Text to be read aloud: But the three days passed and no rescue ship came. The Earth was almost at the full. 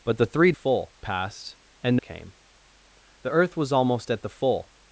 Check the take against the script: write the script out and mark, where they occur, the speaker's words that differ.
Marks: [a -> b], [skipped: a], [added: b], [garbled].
But the three [days -> full] passed and [skipped: no rescue ship] came. The Earth was almost at the full.